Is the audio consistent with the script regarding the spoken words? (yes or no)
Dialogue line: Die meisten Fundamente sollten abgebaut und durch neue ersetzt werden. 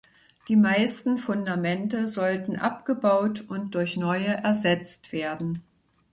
yes